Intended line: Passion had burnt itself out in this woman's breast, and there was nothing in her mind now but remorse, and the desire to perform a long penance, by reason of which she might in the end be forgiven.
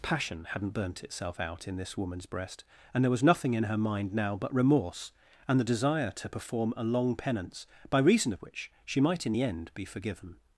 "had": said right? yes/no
no